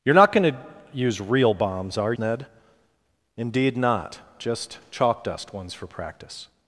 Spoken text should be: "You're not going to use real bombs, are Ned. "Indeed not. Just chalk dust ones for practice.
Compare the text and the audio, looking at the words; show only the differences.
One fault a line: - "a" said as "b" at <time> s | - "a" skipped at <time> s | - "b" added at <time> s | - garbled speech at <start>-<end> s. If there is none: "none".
none